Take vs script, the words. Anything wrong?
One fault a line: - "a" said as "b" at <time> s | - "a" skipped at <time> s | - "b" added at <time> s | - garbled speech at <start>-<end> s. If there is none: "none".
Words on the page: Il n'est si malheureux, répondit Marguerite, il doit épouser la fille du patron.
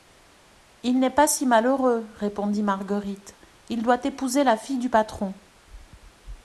- "pas" added at 1.1 s